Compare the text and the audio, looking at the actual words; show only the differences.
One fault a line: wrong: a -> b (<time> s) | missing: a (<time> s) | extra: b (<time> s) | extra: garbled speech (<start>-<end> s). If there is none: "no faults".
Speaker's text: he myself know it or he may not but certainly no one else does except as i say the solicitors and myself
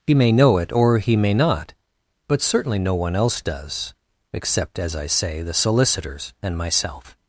wrong: myself -> may (0.1 s)